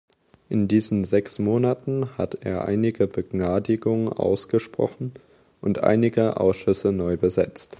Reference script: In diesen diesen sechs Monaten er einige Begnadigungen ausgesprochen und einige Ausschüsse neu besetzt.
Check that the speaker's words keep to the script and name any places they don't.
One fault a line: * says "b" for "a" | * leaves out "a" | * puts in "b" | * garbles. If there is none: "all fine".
* leaves out "diesen"
* puts in "hat"